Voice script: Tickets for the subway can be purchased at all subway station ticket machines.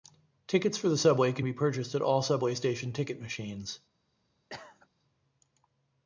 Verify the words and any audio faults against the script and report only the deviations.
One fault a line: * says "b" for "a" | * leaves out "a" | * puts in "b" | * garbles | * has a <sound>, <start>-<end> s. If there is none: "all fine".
* has a cough, 4.5-4.9 s